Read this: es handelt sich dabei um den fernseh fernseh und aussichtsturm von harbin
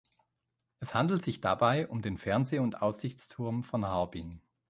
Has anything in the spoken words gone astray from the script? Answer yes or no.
yes